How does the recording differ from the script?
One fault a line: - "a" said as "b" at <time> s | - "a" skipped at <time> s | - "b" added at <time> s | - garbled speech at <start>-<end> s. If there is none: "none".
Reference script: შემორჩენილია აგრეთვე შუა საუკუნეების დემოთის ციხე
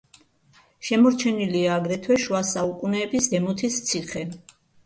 none